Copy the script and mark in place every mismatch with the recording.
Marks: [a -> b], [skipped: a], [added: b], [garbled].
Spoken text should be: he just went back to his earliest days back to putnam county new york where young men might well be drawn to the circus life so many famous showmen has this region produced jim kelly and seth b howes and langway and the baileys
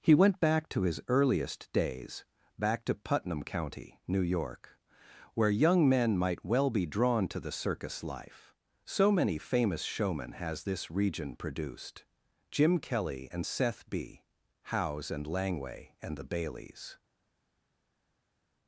he [skipped: just] went back to his earliest days back to putnam county new york where young men might well be drawn to the circus life so many famous showmen has this region produced jim kelly and seth b howes and langway and the baileys